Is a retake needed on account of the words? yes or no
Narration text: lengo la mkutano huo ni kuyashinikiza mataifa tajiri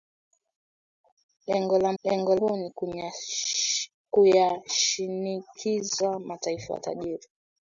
yes